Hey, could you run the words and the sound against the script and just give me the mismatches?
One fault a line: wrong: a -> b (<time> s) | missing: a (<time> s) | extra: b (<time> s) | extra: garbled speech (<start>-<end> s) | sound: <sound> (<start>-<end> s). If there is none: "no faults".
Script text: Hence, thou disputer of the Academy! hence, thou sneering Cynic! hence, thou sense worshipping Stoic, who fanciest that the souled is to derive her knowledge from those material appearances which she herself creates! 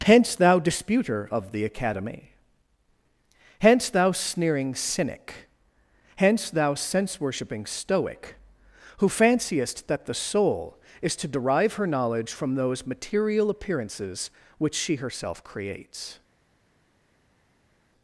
wrong: souled -> soul (10.2 s)